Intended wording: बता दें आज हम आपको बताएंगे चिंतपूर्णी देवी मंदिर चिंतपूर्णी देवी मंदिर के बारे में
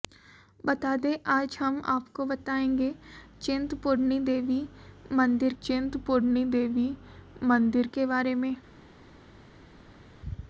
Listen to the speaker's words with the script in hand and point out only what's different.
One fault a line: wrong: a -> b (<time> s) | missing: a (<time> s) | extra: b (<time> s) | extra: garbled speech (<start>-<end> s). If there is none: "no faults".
no faults